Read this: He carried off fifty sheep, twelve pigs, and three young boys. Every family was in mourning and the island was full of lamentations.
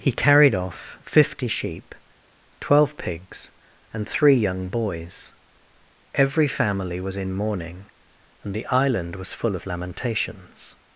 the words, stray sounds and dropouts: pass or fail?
pass